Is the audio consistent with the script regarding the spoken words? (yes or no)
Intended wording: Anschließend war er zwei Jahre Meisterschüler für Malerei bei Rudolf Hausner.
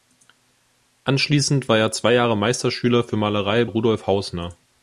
no